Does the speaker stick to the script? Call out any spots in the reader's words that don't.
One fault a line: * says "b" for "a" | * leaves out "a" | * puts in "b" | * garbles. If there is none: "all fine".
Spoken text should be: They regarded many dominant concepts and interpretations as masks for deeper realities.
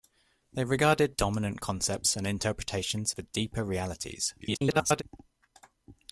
* leaves out "many"
* leaves out "as masks"
* garbles